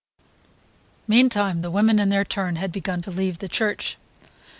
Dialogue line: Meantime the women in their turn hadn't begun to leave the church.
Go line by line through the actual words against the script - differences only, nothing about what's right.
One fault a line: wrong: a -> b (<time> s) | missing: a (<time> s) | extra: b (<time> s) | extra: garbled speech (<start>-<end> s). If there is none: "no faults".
wrong: hadn't -> had (2.6 s)